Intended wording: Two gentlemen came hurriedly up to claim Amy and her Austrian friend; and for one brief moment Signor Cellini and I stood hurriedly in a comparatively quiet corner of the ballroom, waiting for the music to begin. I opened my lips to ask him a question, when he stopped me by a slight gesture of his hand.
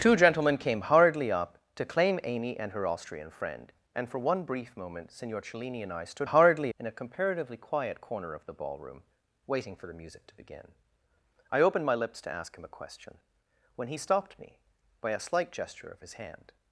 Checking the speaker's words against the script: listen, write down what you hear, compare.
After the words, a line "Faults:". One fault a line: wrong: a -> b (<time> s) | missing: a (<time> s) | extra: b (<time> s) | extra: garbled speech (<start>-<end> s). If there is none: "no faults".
Two gentlemen came hurriedly up to claim Amy and her Austrian friend; and for one brief moment Signor Cellini and I stood hurriedly in a comparatively quiet corner of the ballroom, waiting for the music to begin. I opened my lips to ask him a question, when he stopped me by a slight gesture of his hand.
Faults:
no faults